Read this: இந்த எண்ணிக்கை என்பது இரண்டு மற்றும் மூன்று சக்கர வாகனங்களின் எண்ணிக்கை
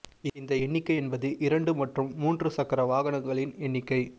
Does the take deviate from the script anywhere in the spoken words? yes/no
no